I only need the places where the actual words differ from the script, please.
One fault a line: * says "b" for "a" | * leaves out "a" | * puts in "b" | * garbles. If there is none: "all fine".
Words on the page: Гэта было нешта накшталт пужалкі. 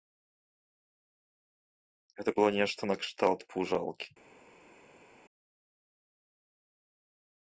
all fine